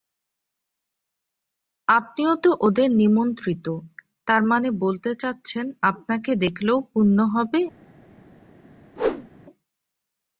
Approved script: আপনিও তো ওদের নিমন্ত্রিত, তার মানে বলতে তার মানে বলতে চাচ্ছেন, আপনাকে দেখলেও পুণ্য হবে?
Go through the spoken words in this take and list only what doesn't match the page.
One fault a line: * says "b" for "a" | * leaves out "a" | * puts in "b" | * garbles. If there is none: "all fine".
* leaves out "তার মানে বলতে"